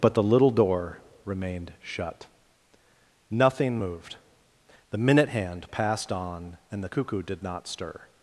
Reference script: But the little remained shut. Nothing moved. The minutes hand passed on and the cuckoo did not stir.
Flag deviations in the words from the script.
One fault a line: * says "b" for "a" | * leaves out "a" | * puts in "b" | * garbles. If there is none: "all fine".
* puts in "door"
* says "minute" for "minutes"